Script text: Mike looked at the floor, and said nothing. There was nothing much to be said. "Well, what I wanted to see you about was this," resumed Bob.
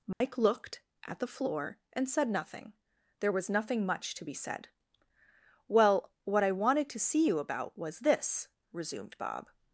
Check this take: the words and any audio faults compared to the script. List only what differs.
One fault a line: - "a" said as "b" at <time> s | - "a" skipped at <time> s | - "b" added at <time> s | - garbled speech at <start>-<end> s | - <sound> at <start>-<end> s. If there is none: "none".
- dropout at 0.1-0.2 s